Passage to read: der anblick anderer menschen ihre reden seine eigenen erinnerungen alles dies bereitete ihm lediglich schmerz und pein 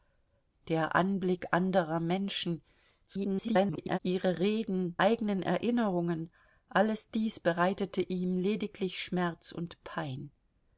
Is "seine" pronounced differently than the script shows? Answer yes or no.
yes